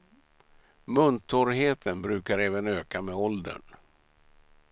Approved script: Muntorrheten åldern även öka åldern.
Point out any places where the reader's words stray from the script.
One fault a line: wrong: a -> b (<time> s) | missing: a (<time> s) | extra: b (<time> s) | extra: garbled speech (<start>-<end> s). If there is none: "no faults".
wrong: åldern -> brukar (2.0 s)
extra: med (3.0 s)